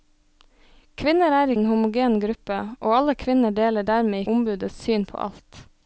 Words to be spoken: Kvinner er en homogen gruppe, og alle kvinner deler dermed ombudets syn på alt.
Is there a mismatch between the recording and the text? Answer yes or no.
no